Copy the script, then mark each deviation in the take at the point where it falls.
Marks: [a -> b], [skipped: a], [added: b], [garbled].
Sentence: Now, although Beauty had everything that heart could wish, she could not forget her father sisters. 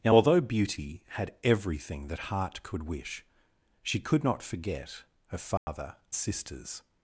Now, although Beauty had everything that heart could wish, she could not forget her father sisters.